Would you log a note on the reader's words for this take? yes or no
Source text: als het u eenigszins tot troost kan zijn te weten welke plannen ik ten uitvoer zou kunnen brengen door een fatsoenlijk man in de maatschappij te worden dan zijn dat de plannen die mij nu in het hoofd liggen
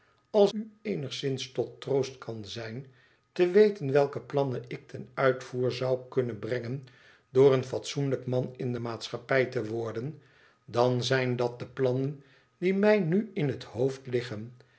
yes